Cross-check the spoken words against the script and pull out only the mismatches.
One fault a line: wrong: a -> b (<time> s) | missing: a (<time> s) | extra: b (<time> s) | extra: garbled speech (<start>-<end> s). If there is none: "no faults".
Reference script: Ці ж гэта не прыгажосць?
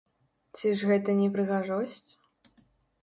no faults